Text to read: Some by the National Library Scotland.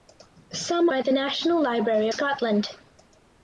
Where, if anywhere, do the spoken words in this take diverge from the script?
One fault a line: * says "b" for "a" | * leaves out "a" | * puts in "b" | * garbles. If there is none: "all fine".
all fine